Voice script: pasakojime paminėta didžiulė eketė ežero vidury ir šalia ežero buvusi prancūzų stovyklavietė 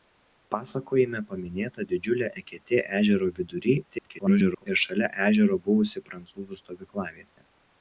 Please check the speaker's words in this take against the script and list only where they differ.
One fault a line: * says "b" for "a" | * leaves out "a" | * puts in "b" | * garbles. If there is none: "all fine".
* garbles